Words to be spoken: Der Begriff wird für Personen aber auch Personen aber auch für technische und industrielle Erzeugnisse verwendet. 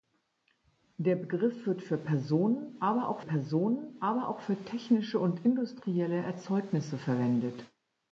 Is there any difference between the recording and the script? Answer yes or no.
no